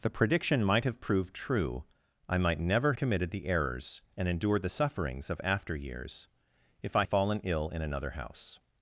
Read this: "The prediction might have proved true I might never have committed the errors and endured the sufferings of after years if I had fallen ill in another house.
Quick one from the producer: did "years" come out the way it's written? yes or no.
yes